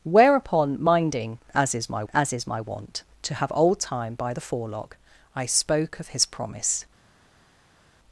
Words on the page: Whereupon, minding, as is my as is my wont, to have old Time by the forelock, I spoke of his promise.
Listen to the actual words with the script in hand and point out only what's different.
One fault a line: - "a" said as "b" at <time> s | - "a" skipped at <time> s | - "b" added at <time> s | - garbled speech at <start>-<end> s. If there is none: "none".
none